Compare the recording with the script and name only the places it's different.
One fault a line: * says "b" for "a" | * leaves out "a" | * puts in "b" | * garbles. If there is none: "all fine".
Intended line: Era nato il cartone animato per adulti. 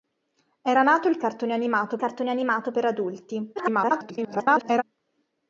* puts in "cartone animato"
* garbles